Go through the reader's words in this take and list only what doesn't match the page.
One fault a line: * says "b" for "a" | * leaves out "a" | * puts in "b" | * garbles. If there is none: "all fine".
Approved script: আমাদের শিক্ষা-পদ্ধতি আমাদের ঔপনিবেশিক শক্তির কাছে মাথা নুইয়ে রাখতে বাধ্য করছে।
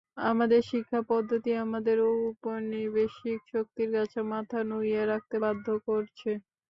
all fine